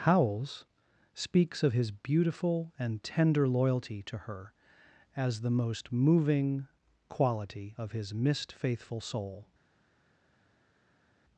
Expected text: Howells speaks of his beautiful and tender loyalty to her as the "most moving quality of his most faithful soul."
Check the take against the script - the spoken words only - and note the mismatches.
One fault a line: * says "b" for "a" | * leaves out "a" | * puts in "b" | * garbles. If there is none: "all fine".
* says "mist" for "most"